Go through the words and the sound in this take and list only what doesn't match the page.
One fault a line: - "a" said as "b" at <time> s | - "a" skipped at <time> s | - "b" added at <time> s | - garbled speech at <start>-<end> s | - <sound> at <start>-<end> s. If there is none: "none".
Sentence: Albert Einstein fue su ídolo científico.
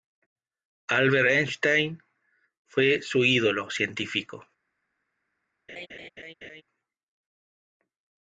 - laugh at 5.7-6.6 s